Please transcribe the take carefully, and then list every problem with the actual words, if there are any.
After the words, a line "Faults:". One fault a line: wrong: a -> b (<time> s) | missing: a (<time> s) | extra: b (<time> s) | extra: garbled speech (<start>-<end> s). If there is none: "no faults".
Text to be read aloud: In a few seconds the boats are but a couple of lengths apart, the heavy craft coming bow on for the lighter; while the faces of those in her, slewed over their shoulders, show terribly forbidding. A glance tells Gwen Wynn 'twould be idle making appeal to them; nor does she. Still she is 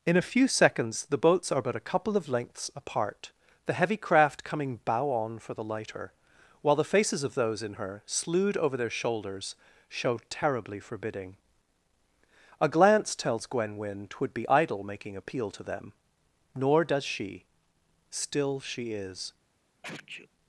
In a few seconds the boats are but a couple of lengths apart, the heavy craft coming bow on for the lighter; while the faces of those in her, slewed over their shoulders, show terribly forbidding. A glance tells Gwen Wynn 'twould be idle making appeal to them; nor does she. Still she is
Faults:
no faults